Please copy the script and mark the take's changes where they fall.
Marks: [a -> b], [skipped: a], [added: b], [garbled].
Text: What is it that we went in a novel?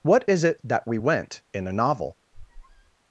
What is it that we went in a novel?